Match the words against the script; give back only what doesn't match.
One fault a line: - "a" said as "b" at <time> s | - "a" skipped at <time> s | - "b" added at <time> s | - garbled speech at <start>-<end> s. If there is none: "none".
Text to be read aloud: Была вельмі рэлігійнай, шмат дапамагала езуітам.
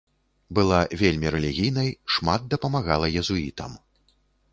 none